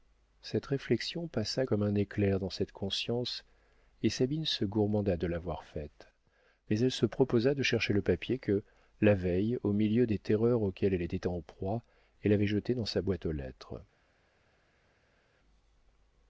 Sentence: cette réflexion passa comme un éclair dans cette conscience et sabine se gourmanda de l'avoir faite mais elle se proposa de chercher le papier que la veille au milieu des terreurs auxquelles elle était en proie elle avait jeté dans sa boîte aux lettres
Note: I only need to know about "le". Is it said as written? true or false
true